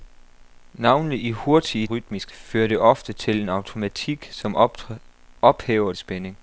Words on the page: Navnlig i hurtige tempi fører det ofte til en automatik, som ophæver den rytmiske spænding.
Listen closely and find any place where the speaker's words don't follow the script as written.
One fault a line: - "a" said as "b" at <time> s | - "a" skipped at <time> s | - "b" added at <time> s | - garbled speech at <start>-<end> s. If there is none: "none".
- "tempi" said as "rytmiske" at 1.8 s
- "den rytmiske" skipped at 5.9 s